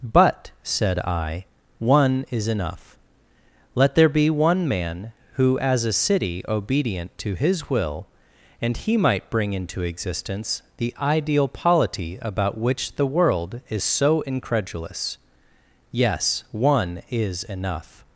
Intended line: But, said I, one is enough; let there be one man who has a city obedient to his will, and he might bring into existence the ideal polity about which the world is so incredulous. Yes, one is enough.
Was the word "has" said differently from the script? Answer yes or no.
yes